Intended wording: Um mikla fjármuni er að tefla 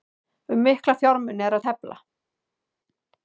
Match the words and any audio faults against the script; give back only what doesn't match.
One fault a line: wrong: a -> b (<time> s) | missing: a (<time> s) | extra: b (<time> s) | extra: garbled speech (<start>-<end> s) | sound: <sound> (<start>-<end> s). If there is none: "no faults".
no faults